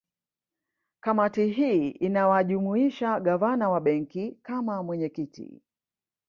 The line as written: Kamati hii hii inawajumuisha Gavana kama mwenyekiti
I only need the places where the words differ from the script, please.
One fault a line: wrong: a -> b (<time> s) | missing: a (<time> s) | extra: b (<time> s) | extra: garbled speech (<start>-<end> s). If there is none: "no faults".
missing: hii (1.9 s)
extra: wa Benki (3.7 s)